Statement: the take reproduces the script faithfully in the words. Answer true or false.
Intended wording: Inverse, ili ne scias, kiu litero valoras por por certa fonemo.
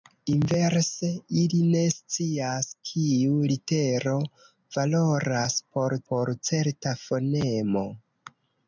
true